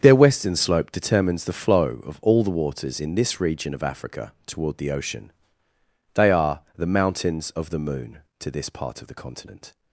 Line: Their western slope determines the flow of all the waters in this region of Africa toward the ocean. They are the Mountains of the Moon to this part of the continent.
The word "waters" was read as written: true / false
true